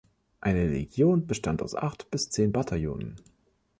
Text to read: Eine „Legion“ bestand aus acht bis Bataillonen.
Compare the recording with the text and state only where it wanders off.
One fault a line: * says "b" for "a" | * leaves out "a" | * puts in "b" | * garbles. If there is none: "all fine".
* puts in "zehn"